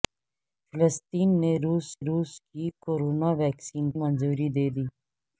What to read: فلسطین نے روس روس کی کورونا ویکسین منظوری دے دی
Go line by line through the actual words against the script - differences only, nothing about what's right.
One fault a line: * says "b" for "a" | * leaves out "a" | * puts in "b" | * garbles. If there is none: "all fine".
all fine